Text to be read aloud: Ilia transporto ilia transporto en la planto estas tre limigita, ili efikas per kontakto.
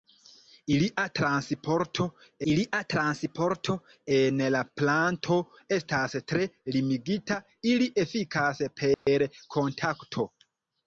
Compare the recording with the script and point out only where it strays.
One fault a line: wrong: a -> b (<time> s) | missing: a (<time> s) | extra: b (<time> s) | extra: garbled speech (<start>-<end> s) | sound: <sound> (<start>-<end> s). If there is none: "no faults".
sound: dropout (8.9-9.1 s)